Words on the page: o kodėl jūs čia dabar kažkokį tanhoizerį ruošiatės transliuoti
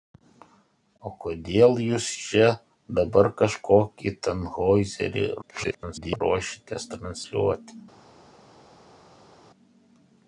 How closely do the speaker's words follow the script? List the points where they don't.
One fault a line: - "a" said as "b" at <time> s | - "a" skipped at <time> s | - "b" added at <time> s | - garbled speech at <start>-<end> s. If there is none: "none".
- garbled speech at 5.4-6.2 s